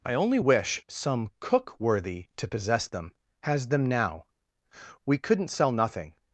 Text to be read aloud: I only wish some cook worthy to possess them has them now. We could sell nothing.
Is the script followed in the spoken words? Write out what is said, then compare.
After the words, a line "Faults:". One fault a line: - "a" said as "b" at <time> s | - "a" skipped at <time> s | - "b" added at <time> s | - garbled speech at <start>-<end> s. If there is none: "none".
I only wish some cook worthy to possess them has them now. We couldn't sell nothing.
Faults:
- "could" said as "couldn't" at 5.2 s